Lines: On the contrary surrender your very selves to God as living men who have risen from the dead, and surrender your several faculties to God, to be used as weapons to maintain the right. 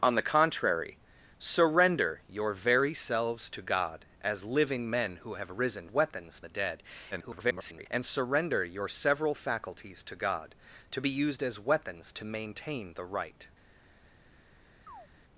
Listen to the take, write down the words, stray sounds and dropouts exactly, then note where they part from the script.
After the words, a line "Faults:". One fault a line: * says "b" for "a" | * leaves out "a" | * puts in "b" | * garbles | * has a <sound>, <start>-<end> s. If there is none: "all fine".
On the contrary surrender your very selves to God as living men who have risen weapons the dead, [garbled] and surrender your several faculties to God, to be used as weapons to maintain the right.
Faults:
* says "weapons" for "from"
* garbles
* has a chirp, 14.9-15.1 s